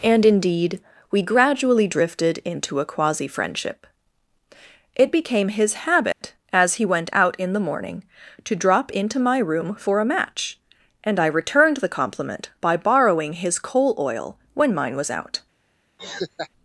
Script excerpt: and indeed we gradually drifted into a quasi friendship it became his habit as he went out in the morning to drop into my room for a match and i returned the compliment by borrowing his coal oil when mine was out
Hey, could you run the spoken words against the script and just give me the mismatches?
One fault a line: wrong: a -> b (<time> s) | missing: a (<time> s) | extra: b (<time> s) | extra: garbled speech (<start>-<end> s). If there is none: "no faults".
no faults